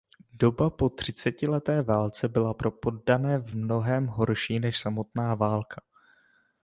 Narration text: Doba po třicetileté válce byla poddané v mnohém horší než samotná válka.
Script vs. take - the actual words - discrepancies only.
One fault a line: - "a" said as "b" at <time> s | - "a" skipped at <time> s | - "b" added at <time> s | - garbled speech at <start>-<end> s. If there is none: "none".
- "pro" added at 2.5 s